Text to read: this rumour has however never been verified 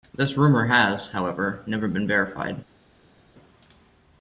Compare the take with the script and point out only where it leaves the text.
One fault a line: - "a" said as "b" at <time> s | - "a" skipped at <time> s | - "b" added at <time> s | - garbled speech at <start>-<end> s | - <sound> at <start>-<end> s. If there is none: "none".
none